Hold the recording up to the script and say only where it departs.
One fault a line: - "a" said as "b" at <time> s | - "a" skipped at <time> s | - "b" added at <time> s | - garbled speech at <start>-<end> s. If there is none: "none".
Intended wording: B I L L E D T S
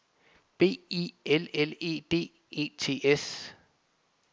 - "E" added at 2.5 s